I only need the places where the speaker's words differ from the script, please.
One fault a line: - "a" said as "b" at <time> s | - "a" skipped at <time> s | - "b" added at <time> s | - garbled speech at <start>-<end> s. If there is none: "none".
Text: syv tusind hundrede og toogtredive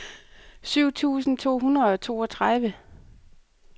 - "to" added at 1.4 s